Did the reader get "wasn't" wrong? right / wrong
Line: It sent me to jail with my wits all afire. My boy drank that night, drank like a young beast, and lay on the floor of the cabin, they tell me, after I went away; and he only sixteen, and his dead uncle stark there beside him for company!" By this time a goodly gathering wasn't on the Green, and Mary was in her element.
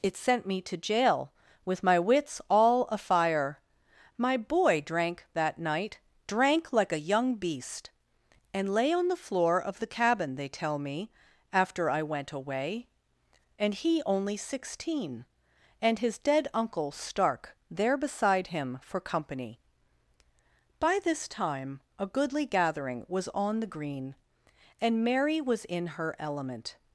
wrong